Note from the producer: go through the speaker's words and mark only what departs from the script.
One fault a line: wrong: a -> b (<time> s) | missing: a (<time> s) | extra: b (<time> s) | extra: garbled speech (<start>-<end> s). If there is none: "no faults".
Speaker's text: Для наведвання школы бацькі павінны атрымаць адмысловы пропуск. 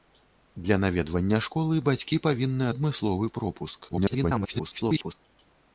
missing: атрымаць (2.7 s)
extra: garbled speech (3.9-5.1 s)